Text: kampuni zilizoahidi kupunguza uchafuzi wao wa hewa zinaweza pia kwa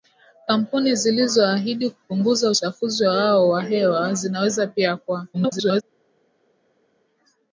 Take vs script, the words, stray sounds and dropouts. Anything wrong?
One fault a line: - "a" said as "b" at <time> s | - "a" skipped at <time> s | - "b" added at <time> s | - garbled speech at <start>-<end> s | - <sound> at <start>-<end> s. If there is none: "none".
- garbled speech at 5.3-5.8 s